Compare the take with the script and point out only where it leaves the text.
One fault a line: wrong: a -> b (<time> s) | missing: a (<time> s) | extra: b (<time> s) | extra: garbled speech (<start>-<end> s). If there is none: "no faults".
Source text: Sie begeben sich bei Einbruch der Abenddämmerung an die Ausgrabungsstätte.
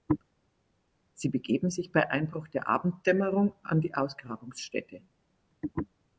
no faults